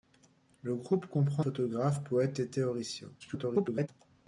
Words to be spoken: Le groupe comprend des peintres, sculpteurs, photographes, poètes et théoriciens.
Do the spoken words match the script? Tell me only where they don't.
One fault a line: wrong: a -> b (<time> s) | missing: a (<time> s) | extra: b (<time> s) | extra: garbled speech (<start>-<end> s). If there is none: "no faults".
missing: des peintres sculpteurs (1.4 s)
extra: garbled speech (3.2-3.9 s)